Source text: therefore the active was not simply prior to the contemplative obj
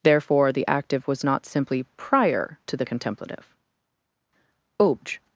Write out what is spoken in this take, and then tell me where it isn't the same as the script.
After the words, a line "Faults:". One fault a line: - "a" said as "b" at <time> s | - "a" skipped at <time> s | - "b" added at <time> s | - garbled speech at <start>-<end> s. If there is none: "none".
therefore the active was not simply prior to the contemplative obj
Faults:
none